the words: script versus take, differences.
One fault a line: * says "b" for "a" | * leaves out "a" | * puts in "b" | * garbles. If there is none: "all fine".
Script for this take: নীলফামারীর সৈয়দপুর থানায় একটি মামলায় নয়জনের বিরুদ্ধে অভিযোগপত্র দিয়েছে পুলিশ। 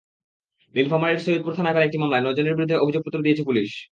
* puts in "করা"